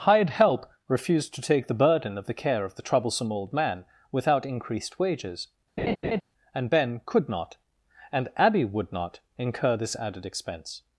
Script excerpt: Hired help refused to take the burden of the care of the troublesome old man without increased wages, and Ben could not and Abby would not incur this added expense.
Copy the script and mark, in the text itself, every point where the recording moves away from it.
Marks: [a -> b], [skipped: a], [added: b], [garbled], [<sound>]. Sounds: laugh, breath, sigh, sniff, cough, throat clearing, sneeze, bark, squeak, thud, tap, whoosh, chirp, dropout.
Hired help refused to take the burden of the care of the troublesome old man without increased wages, [laugh] and Ben could not and Abby would not incur this added expense.